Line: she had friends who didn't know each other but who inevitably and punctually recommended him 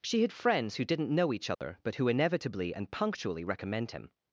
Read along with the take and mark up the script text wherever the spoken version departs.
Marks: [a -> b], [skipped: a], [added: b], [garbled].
she had friends who didn't know each other but who inevitably and punctually [recommended -> recommend] him